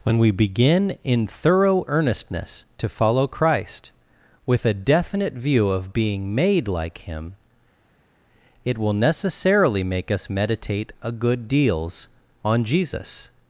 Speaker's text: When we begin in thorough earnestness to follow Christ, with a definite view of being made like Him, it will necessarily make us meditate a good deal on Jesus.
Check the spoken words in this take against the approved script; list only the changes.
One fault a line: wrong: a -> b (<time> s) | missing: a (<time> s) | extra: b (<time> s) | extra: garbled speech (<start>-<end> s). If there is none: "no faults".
wrong: deal -> deals (11.5 s)